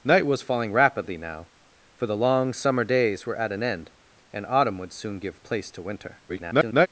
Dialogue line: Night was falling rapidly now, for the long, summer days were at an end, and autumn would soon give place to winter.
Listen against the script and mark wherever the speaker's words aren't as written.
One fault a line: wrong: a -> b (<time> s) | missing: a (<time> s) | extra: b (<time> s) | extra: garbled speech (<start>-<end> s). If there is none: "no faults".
extra: garbled speech (6.3-6.9 s)